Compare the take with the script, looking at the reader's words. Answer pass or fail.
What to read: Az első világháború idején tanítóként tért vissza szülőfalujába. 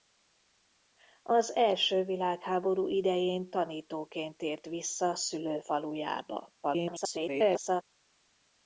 fail